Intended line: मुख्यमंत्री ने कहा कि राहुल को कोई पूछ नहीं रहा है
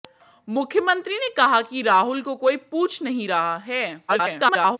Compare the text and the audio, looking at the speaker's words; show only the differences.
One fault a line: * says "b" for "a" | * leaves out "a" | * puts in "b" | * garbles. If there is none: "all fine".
* garbles